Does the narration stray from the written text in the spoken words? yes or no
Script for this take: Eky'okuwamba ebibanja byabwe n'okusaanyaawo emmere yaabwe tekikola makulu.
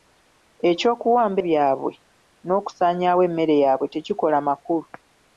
yes